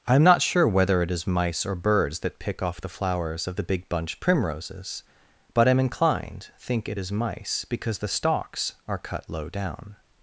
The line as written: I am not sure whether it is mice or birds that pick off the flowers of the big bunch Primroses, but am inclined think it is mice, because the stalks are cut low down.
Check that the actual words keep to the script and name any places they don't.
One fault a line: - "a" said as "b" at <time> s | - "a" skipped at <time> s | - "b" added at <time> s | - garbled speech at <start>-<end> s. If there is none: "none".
none